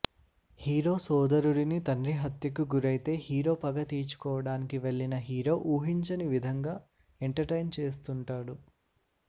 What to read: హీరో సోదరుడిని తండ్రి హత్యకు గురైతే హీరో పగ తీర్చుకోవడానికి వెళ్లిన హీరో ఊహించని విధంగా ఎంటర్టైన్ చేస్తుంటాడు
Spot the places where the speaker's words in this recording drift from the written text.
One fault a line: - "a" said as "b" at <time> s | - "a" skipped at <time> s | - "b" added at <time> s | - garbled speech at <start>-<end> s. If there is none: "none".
none